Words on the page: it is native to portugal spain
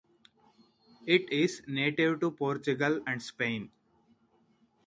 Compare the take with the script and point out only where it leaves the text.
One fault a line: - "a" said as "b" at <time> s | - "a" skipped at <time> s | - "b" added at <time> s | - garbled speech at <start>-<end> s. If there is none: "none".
- "and" added at 3.1 s